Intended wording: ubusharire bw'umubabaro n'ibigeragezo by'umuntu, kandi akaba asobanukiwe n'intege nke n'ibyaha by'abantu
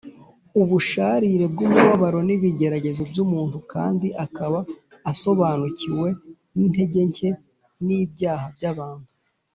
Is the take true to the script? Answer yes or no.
yes